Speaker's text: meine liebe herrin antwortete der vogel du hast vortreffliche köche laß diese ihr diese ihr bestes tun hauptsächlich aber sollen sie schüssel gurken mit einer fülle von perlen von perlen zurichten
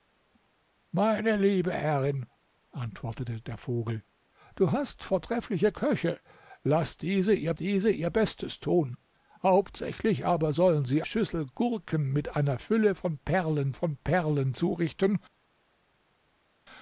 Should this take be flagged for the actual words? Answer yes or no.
no